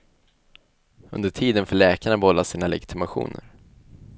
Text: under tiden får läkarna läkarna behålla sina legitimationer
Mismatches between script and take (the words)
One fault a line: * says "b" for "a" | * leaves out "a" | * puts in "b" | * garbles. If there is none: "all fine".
* leaves out "läkarna"